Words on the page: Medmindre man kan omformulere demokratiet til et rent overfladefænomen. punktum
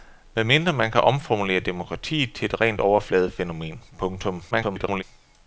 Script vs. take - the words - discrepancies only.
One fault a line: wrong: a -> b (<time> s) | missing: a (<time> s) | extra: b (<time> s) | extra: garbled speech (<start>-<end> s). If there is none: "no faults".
extra: garbled speech (4.5-5.0 s)